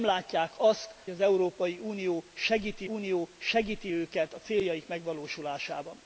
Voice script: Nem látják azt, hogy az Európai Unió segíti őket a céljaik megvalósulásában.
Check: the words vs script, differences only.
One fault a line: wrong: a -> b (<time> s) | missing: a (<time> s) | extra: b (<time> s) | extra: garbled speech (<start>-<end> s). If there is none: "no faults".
missing: hogy (0.9 s)
extra: Unió segíti (2.8 s)